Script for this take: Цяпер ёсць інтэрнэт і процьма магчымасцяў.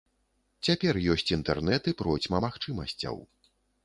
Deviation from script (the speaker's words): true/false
false